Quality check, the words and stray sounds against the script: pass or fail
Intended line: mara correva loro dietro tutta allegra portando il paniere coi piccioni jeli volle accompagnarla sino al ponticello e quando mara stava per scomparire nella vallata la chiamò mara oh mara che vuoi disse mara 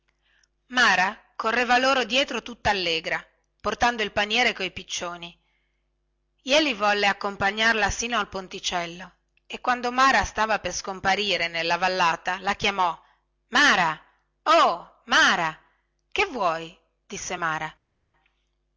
pass